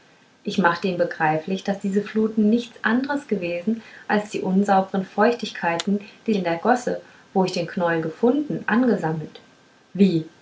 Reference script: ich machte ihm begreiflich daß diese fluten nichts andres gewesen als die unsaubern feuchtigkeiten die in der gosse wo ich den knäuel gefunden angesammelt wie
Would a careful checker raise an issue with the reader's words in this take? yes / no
no